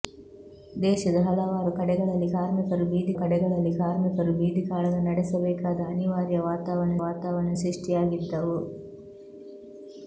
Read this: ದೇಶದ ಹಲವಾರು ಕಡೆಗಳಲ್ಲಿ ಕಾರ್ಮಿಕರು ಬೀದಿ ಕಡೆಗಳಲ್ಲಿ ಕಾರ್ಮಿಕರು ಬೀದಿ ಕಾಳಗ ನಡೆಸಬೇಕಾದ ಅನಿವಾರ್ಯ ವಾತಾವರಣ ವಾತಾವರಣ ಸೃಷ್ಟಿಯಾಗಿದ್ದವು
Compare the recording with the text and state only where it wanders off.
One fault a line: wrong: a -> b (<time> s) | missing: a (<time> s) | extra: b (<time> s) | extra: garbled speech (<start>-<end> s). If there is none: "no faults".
no faults